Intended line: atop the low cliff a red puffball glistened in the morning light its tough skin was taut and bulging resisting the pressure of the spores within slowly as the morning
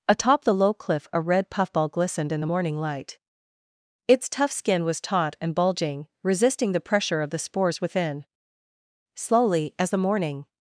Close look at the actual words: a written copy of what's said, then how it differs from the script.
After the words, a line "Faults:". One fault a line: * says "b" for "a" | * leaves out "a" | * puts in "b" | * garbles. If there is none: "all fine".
atop the low cliff a red puffball glistened in the morning light its tough skin was taut and bulging resisting the pressure of the spores within slowly as the morning
Faults:
all fine